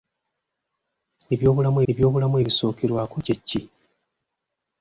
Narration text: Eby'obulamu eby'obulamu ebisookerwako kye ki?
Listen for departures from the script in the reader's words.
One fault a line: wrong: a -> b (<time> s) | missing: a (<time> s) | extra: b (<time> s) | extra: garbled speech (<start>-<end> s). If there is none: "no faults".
no faults